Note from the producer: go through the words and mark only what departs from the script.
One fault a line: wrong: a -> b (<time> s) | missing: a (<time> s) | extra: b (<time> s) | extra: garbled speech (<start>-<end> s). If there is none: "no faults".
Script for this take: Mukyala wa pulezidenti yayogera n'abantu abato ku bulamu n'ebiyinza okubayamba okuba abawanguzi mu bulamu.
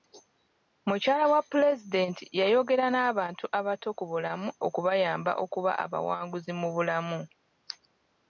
missing: n'ebiyinza (4.5 s)